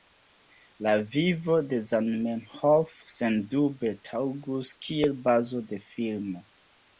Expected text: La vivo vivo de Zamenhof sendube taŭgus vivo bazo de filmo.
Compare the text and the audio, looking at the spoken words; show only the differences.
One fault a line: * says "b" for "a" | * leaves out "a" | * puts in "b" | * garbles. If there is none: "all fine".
* leaves out "vivo"
* says "kiel" for "vivo"